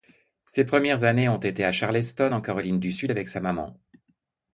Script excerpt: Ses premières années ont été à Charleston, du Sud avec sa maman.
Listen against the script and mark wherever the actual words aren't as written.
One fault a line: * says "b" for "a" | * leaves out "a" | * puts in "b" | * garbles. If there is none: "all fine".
* puts in "en Caroline"